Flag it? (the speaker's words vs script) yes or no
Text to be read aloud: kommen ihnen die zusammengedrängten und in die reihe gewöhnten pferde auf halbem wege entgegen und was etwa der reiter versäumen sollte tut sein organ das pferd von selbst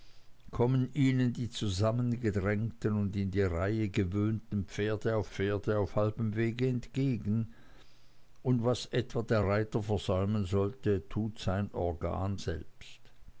yes